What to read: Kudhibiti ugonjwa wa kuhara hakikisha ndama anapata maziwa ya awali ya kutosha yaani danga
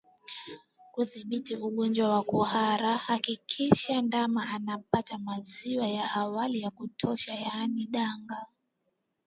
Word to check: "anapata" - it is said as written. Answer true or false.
true